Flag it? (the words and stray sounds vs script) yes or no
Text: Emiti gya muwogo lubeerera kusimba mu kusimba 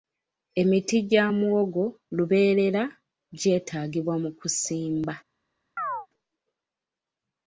yes